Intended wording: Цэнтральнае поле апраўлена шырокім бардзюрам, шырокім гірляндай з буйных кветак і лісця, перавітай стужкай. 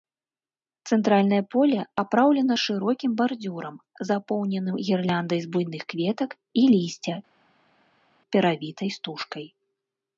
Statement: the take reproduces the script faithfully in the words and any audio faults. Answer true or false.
false